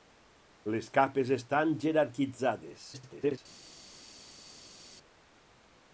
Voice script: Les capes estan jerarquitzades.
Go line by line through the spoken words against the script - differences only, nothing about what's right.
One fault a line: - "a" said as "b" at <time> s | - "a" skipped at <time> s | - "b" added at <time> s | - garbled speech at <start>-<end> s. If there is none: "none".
- garbled speech at 2.9-3.4 s